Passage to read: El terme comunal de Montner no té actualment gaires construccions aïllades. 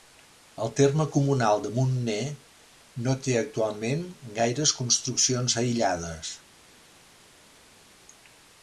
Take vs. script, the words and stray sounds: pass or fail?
pass